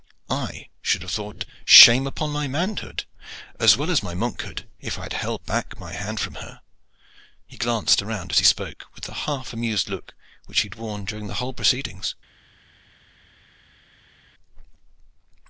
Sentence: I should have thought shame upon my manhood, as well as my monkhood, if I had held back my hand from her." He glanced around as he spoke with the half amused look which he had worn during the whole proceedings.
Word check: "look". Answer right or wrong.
right